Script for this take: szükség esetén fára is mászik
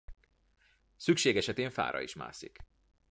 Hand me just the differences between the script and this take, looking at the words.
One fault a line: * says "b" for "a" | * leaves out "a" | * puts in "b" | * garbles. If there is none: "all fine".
all fine